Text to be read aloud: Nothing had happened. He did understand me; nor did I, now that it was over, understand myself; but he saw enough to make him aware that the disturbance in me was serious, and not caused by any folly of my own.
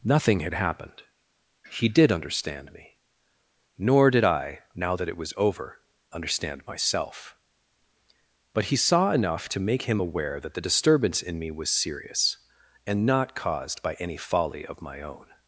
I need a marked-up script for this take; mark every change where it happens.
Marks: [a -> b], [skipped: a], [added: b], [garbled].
Nothing had happened. He did understand me; nor did I, now that it was over, understand myself; but he saw enough to make him aware that the disturbance in me was serious, and not caused by any folly of my own.